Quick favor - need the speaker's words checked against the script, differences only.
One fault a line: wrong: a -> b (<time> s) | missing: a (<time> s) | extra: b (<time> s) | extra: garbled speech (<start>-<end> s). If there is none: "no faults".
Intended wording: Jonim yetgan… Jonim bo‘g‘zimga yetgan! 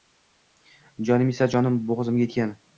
wrong: yetgan -> esa (1.4 s)